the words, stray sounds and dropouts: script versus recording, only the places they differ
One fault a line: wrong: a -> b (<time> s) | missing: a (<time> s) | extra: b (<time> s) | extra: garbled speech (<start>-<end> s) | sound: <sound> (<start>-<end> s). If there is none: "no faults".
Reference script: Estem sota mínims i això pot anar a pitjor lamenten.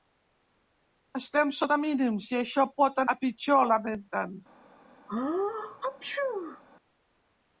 missing: anar (3.0 s)
sound: sneeze (5.1-6.6 s)